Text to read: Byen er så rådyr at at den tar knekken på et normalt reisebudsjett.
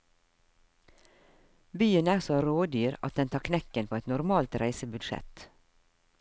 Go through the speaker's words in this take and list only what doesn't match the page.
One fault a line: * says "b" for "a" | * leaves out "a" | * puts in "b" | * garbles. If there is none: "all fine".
* leaves out "at"